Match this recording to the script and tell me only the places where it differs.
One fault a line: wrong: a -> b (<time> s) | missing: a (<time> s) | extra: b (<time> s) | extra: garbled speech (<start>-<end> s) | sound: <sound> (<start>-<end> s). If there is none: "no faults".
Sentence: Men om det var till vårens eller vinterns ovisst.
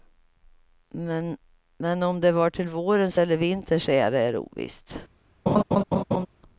extra: ära är (3.9 s)
sound: laugh (5.5-6.3 s)